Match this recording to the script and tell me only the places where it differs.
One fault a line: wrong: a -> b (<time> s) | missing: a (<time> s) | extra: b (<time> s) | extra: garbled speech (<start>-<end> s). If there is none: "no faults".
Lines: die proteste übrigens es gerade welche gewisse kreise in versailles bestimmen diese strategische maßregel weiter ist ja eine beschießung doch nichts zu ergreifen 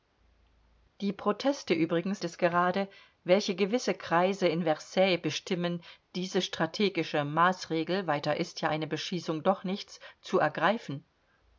no faults